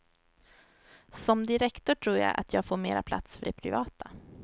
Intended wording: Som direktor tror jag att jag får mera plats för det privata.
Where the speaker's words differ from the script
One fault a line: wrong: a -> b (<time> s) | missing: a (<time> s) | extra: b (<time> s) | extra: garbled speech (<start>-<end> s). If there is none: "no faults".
no faults